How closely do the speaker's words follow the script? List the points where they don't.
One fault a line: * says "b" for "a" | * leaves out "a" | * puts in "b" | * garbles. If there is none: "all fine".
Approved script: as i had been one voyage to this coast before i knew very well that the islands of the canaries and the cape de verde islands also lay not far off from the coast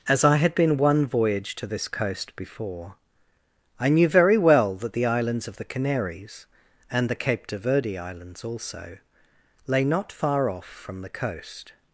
all fine